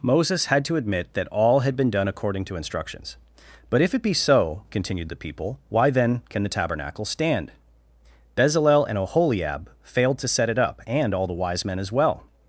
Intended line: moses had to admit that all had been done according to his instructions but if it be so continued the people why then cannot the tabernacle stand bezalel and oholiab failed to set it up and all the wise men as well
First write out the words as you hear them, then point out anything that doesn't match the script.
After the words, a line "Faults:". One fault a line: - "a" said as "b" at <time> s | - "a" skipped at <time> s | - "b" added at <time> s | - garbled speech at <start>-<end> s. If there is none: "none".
moses had to admit that all had been done according to instructions but if it be so continued the people why then can the tabernacle stand bezalel and oholiab failed to set it up and all the wise men as well
Faults:
- "his" skipped at 2.5 s
- "cannot" said as "can" at 6.3 s